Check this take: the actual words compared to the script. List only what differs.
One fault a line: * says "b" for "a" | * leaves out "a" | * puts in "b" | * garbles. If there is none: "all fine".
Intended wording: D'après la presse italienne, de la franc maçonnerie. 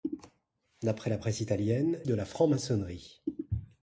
all fine